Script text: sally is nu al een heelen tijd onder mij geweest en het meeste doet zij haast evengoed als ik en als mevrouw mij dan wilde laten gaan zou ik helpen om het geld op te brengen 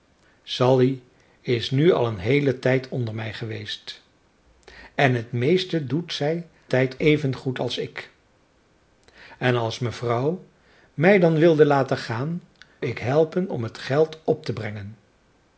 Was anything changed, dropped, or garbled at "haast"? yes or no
yes